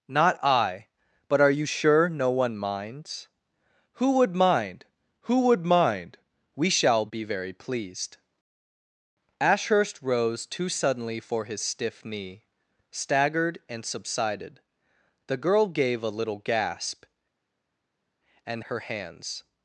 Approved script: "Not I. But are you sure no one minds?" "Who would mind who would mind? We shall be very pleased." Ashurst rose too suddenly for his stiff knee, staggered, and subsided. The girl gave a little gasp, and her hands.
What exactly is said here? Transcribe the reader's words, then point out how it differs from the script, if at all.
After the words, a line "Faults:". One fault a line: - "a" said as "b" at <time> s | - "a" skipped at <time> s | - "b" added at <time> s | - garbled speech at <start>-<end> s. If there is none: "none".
"Not I. But are you sure no one minds?" "Who would mind who would mind? We shall be very pleased." Ashurst rose too suddenly for his stiff knee, staggered, and subsided. The girl gave a little gasp, and her hands.
Faults:
none